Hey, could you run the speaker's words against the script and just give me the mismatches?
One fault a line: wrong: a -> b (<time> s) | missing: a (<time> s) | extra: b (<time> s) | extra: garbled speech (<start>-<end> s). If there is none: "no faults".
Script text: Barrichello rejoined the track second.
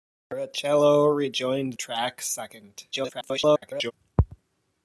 missing: the (1.7 s)
extra: garbled speech (2.9-3.9 s)